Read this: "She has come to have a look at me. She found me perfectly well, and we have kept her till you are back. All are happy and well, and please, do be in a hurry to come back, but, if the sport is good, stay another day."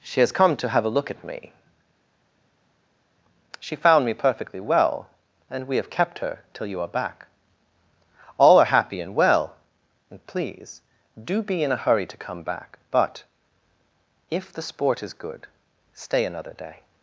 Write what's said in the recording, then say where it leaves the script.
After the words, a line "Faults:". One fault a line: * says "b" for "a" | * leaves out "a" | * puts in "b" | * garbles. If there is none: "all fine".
"She has come to have a look at me. She found me perfectly well, and we have kept her till you are back. All are happy and well, and please, do be in a hurry to come back, but, if the sport is good, stay another day."
Faults:
all fine